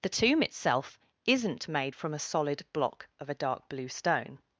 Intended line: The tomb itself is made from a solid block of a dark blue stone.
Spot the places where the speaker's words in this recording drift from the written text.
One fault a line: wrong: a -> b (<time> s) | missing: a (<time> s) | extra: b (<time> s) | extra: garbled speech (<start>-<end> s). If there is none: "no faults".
wrong: is -> isn't (1.2 s)